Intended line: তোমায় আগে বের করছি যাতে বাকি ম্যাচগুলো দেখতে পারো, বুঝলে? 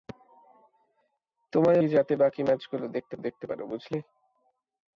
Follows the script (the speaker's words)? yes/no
no